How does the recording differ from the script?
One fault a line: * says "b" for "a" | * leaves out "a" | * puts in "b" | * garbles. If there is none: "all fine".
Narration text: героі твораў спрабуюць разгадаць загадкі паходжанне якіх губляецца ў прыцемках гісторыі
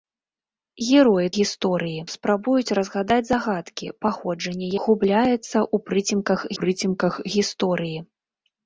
* says "гісторыі" for "твораў"
* leaves out "якіх"
* puts in "прыцемках"